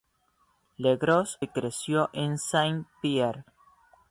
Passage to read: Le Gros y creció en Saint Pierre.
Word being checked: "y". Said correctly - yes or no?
yes